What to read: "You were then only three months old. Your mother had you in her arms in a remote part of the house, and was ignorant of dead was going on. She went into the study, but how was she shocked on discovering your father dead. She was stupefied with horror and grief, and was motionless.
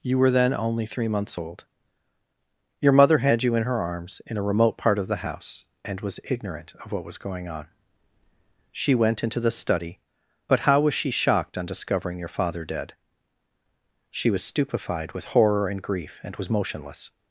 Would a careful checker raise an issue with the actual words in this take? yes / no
yes